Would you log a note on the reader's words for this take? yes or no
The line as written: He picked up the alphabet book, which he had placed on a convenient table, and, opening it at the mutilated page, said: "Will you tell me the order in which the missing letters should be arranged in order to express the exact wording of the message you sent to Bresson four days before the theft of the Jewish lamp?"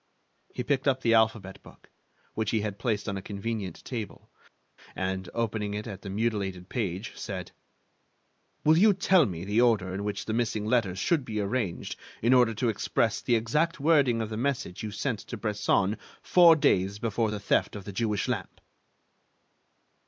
no